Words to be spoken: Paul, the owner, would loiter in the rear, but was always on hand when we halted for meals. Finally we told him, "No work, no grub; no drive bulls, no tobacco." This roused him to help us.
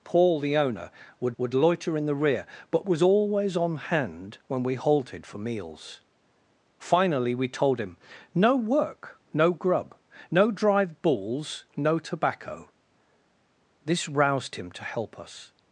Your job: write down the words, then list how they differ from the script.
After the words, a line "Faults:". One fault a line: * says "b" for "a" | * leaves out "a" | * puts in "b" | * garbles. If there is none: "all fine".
Paul, the owner, would would loiter in the rear, but was always on hand when we halted for meals. Finally we told him, "No work, no grub; no drive bulls, no tobacco." This roused him to help us.
Faults:
* puts in "would"